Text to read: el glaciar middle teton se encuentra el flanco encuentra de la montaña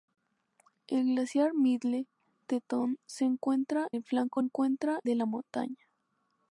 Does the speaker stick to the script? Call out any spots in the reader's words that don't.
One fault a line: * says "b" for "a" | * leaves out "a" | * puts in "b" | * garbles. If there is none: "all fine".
all fine